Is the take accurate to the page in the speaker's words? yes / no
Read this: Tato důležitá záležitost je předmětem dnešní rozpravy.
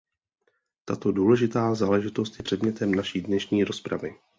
no